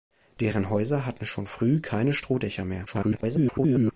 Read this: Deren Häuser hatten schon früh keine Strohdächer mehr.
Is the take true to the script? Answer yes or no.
no